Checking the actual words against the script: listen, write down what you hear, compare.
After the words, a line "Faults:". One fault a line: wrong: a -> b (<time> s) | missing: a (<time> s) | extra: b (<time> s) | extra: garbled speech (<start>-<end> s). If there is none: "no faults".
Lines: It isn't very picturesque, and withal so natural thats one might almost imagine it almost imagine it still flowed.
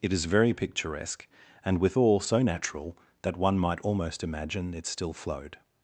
It is very picturesque, and withal so natural that one might almost imagine it still flowed.
Faults:
wrong: isn't -> is (0.1 s)
wrong: thats -> that (3.2 s)
missing: almost imagine it (4.9 s)